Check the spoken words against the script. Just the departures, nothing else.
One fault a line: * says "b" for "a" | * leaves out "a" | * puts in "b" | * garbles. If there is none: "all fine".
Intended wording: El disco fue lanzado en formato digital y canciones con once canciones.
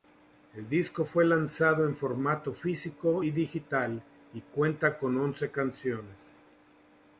* puts in "físico y"
* says "cuenta" for "canciones"